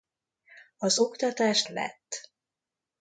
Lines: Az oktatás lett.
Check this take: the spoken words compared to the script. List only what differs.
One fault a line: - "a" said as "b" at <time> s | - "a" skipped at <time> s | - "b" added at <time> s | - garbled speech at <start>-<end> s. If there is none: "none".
none